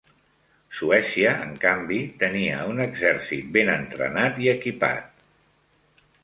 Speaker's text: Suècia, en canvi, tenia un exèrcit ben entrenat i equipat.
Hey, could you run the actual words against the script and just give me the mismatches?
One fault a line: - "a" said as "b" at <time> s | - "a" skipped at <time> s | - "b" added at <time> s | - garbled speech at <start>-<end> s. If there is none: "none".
none